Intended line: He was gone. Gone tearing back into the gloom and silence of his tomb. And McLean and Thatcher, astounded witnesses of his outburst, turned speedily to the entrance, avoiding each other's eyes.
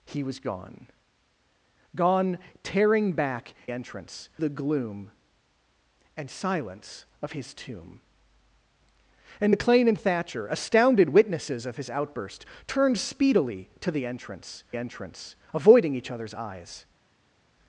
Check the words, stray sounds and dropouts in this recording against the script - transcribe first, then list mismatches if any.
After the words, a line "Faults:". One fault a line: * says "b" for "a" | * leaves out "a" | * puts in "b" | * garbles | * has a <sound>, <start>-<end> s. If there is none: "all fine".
He was gone. Gone tearing back entrance the gloom and silence of his tomb. And McLean and Thatcher, astounded witnesses of his outburst, turned speedily to the entrance entrance, avoiding each other's eyes.
Faults:
* says "entrance" for "into"
* puts in "entrance"